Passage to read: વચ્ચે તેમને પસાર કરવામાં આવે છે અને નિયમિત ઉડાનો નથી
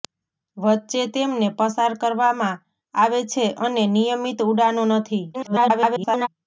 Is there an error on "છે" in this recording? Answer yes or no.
no